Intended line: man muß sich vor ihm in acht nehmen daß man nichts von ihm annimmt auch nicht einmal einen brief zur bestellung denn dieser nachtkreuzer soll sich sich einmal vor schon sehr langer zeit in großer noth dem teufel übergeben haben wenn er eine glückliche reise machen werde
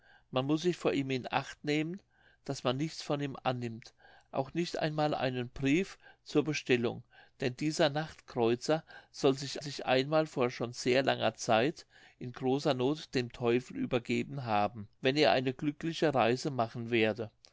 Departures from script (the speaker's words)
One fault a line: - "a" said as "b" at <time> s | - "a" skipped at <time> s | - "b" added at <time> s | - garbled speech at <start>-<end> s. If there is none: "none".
none